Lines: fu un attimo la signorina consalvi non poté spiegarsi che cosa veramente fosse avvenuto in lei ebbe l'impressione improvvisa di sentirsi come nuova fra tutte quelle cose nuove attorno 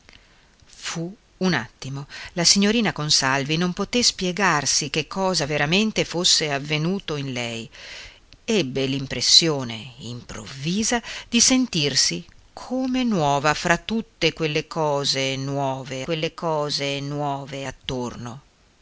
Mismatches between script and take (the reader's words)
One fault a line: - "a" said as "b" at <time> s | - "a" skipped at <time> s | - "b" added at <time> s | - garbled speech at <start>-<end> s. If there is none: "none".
- "quelle cose nuove" added at 16.0 s